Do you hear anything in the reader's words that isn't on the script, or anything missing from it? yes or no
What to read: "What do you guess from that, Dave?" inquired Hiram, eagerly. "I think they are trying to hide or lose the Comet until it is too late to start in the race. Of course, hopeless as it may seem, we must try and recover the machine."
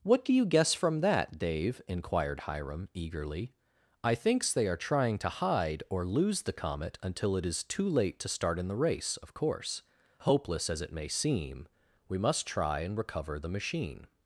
yes